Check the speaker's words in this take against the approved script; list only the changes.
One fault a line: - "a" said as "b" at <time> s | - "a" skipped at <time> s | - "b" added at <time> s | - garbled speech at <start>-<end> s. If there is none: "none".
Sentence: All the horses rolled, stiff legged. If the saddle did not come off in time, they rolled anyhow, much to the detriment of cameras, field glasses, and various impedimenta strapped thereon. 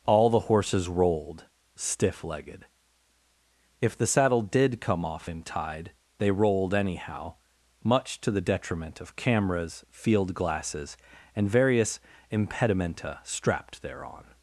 - "not" skipped at 4.8 s
- "time" said as "tide" at 5.4 s